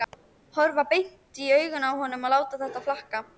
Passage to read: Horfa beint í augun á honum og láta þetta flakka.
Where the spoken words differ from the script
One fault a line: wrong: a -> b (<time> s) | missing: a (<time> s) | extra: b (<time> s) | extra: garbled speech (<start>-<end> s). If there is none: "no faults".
no faults